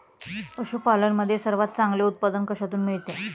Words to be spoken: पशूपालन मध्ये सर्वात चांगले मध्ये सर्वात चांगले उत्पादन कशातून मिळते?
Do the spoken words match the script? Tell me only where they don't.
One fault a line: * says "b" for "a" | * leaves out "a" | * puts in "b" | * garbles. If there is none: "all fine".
* leaves out "मध्ये सर्वात चांगले"